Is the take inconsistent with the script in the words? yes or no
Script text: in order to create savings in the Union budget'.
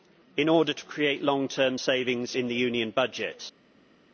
yes